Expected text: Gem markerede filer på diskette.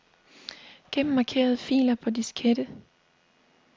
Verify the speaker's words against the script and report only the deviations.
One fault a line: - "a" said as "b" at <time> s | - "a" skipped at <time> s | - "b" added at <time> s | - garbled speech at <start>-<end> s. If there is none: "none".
none